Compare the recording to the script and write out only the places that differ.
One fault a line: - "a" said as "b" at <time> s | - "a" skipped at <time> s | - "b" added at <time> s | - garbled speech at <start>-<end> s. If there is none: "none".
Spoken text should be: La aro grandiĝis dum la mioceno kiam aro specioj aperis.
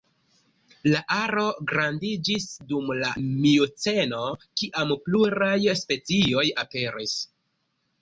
- "aro" said as "pluraj" at 5.1 s